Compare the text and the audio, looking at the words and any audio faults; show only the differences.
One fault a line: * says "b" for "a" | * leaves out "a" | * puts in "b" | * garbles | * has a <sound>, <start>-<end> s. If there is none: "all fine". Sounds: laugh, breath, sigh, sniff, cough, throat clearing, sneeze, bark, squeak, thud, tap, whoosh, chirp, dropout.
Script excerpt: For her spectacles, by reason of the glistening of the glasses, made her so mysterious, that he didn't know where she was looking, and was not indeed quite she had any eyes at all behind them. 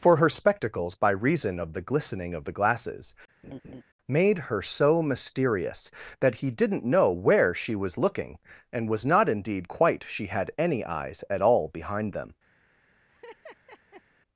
* has a laugh, 3.4-3.8 s
* has a laugh, 13.1-14.0 s